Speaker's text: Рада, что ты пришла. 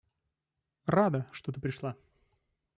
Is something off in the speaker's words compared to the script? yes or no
no